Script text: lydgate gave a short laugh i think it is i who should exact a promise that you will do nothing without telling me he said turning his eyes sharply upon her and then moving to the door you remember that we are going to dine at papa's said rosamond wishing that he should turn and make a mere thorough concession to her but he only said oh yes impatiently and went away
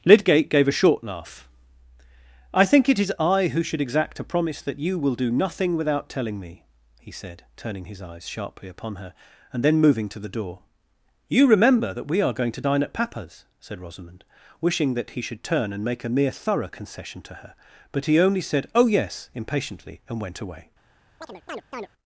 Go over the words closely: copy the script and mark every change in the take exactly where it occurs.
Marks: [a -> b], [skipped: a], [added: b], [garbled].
lydgate gave a short laugh i think it is i who should exact a promise that you will do nothing without telling me he said turning his eyes sharply upon her and then moving to the door you remember that we are going to dine at papa's said rosamond wishing that he should turn and make a mere thorough concession to her but he only said oh yes impatiently and went away